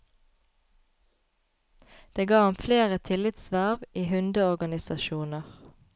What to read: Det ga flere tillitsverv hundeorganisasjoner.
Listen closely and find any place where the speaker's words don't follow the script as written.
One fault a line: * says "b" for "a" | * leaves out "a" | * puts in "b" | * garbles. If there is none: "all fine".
* puts in "ham"
* puts in "i"